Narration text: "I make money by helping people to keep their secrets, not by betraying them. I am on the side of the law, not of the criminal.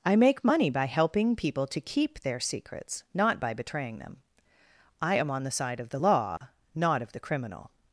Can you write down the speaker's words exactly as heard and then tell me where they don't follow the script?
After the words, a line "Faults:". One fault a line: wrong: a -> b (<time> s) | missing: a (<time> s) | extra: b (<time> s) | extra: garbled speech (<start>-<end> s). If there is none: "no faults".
"I make money by helping people to keep their secrets, not by betraying them. I am on the side of the law, not of the criminal.
Faults:
no faults